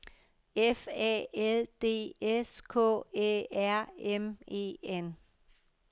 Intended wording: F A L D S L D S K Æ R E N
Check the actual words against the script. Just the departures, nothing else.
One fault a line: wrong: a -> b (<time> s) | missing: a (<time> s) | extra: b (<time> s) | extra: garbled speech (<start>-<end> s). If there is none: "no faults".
missing: L D S (2.6 s)
extra: M (4.0 s)